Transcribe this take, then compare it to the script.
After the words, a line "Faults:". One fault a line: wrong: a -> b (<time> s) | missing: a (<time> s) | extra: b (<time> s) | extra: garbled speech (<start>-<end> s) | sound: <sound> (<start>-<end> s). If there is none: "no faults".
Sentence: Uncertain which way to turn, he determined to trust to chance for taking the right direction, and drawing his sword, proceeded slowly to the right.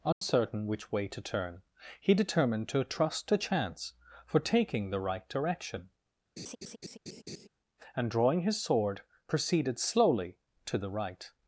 Uncertain which way to turn, he determined to trust to chance for taking the right direction, and drawing his sword, proceeded slowly to the right.
Faults:
sound: dropout (0.1-0.2 s)
sound: laugh (6.4-7.5 s)